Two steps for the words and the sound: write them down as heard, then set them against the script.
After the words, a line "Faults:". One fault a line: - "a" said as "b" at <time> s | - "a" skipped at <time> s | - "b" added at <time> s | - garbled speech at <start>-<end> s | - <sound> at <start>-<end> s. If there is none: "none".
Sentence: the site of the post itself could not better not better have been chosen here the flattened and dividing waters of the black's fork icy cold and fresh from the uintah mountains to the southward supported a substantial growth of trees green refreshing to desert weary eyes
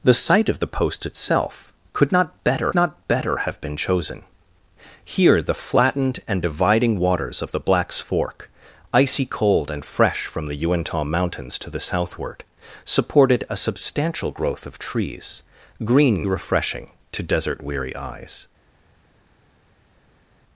the site of the post itself could not better not better have been chosen here the flattened and dividing waters of the black's fork icy cold and fresh from the uintah mountains to the southward supported a substantial growth of trees green refreshing to desert weary eyes
Faults:
none